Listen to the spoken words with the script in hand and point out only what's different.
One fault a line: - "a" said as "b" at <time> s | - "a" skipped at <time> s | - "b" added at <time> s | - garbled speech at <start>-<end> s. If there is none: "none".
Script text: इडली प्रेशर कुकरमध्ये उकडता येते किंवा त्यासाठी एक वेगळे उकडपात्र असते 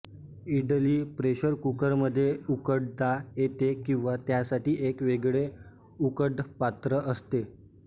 none